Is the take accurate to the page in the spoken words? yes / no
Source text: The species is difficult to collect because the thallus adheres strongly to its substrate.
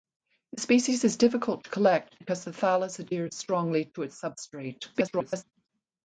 no